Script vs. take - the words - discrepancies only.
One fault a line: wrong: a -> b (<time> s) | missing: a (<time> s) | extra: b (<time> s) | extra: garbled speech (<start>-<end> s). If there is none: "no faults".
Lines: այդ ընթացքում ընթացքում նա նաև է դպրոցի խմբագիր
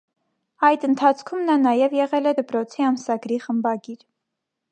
missing: ընթացքում (1.4 s)
extra: եղել (2.0 s)
extra: ամսագրի (2.9 s)